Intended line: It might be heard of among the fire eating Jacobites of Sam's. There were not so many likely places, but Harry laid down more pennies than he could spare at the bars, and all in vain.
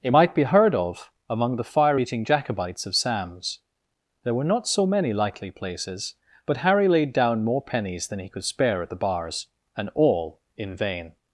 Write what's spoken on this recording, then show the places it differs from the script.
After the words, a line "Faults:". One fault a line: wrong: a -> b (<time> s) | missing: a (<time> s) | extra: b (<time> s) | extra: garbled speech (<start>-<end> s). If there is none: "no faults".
It might be heard of among the fire eating Jacobites of Sam's. There were not so many likely places, but Harry laid down more pennies than he could spare at the bars, and all in vain.
Faults:
no faults